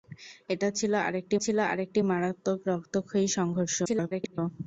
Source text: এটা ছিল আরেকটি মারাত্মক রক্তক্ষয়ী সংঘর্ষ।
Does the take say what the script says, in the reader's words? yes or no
no